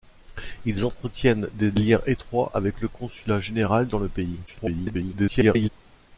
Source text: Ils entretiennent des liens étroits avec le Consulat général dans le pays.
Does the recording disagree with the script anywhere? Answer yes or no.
yes